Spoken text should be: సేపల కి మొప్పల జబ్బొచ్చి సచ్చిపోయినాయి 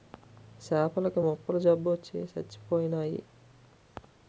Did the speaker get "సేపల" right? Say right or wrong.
right